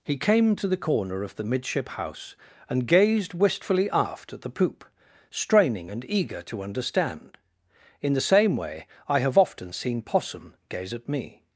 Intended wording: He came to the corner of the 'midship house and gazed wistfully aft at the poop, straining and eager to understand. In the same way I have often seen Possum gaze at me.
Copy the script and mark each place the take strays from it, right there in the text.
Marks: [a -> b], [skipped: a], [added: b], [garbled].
He came to the corner of the 'midship house and gazed wistfully aft at the poop, straining and eager to understand. In the same way I have often seen Possum gaze at me.